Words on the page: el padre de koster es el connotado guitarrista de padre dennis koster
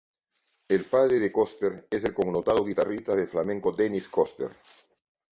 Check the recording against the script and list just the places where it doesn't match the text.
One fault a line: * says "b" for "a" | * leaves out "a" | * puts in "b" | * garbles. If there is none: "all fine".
* says "flamenco" for "padre"